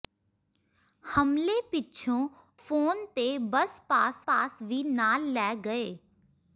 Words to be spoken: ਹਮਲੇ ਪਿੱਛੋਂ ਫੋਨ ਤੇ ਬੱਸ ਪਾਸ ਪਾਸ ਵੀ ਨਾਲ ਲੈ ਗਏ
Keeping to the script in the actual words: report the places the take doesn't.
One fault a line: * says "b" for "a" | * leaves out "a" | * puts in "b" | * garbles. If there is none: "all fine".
all fine